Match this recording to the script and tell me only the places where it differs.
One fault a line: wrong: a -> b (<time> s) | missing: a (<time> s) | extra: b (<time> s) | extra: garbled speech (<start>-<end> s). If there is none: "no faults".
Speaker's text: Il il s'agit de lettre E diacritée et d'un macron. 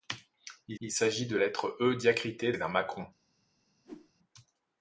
no faults